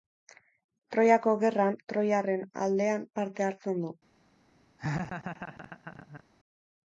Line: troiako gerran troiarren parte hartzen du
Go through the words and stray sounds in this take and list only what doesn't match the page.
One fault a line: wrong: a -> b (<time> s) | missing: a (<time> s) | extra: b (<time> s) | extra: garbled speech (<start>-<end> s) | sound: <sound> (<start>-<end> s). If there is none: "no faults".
extra: aldean (2.7 s)
sound: laugh (4.8-6.2 s)